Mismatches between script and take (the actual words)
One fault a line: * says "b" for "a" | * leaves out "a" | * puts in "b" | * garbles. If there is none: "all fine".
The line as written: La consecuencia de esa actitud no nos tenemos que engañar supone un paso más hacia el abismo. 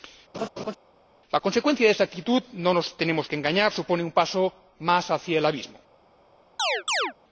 all fine